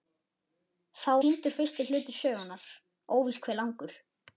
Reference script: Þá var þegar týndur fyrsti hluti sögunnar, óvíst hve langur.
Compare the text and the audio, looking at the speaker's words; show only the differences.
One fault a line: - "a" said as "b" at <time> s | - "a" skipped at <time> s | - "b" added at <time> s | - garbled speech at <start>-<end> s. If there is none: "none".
- "var þegar" skipped at 1.1 s